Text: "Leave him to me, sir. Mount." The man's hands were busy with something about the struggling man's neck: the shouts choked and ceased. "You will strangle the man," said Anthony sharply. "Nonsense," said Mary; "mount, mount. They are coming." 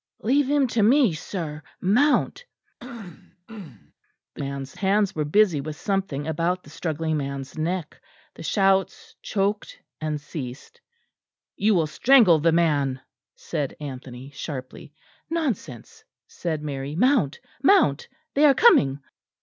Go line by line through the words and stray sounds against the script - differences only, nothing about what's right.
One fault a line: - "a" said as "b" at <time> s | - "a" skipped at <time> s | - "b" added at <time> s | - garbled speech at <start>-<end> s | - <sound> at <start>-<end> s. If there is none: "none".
- throat clearing at 2.8-3.9 s